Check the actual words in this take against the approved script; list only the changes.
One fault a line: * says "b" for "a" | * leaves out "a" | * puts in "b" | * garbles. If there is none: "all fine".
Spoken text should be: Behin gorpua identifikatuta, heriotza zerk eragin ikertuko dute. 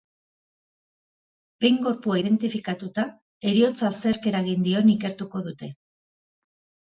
* puts in "dion"